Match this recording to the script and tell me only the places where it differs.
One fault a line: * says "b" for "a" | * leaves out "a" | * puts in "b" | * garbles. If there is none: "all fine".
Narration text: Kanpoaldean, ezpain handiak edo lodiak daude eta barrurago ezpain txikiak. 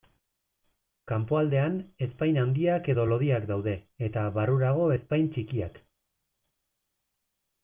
all fine